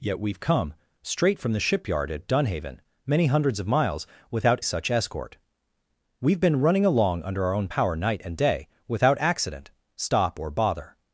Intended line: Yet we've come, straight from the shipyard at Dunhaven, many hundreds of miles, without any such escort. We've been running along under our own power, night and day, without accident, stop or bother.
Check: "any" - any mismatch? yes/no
yes